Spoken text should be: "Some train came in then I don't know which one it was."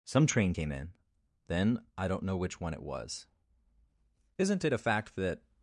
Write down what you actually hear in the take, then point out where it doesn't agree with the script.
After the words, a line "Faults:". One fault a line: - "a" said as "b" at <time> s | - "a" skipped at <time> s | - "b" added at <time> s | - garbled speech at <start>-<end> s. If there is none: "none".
"Some train came in then I don't know which one it was." "Isn't it a fact that
Faults:
- "Isn't it a fact that" added at 4.4 s